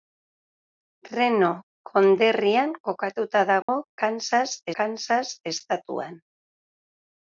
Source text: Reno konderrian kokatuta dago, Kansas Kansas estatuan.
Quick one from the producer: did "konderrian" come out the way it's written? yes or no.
yes